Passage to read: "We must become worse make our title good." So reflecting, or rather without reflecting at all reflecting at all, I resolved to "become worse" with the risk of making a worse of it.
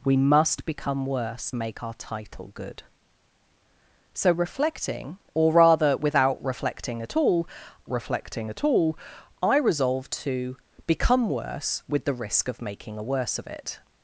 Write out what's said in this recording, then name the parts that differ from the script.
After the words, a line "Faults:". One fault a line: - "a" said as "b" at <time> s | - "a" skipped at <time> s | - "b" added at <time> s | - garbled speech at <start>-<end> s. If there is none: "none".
"We must become worse make our title good." So reflecting, or rather without reflecting at all reflecting at all, I resolved to "become worse" with the risk of making a worse of it.
Faults:
none